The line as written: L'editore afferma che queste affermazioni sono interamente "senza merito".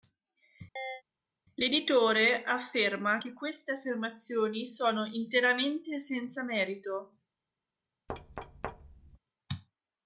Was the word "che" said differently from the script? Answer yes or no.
no